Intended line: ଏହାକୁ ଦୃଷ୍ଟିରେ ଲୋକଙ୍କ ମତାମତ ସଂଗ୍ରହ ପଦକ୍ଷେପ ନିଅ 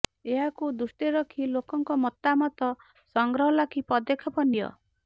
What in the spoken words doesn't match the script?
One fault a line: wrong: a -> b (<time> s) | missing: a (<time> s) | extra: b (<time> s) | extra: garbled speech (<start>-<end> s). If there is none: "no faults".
extra: ରଖି (1.1 s)
extra: ଲାଗି (3.6 s)